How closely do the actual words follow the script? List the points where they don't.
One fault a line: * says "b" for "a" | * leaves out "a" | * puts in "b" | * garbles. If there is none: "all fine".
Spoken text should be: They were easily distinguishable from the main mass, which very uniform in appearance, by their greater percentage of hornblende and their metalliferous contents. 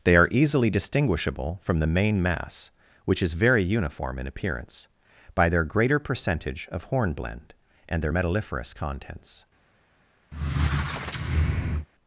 * says "are" for "were"
* puts in "is"